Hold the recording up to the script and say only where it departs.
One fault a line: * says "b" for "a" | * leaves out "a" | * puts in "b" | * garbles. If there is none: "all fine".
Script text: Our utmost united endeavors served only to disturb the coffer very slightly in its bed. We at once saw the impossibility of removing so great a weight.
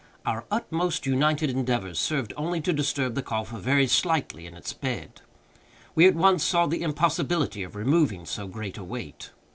all fine